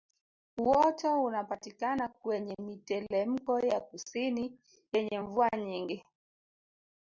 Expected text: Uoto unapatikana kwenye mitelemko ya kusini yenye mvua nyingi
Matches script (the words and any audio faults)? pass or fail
pass